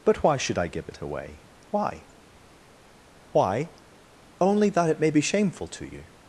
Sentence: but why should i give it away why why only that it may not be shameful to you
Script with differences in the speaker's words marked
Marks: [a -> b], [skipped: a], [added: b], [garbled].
but why should i give it away why why only that it may [skipped: not] be shameful to you